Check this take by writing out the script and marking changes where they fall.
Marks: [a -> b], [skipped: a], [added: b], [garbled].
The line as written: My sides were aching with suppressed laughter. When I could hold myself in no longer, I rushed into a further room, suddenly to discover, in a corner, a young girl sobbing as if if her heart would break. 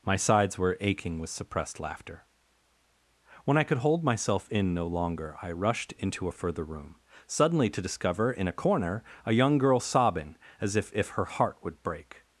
My sides were aching with suppressed laughter. When I could hold myself in no longer, I rushed into a further room, suddenly to discover, in a corner, a young girl sobbing as if if her heart would break.